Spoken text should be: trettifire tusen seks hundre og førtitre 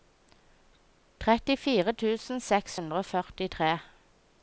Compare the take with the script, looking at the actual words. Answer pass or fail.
pass